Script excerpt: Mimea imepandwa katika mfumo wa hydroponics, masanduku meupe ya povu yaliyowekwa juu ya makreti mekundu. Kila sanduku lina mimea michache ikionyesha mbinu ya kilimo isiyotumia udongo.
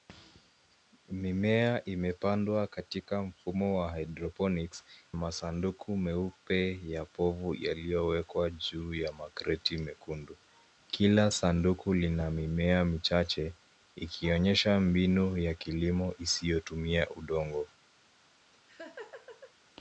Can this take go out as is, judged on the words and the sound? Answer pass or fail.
fail